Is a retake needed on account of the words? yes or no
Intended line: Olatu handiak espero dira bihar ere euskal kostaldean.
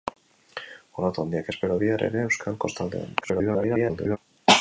yes